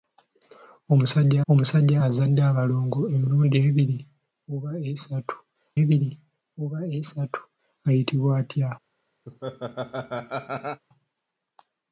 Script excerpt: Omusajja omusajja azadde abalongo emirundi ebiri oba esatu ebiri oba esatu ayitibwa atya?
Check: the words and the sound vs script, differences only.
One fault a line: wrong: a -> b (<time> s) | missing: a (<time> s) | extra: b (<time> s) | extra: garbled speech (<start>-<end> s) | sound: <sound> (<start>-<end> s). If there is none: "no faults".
sound: laugh (9.3-10.8 s)